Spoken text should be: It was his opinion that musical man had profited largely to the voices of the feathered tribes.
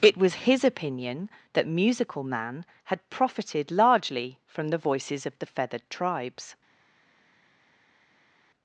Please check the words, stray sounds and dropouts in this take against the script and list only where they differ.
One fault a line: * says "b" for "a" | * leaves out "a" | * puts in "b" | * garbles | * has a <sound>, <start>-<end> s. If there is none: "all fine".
* says "from" for "to"